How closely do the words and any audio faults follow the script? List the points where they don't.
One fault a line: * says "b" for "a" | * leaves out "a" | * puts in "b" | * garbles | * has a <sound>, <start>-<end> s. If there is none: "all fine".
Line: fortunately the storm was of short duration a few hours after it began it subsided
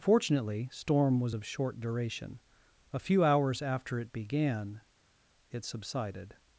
* leaves out "the"